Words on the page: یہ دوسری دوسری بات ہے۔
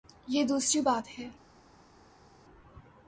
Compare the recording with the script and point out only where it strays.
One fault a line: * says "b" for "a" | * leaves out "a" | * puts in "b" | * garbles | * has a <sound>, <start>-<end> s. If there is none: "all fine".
* leaves out "دوسری"